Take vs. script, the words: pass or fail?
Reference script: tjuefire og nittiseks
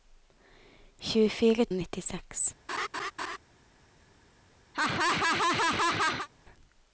pass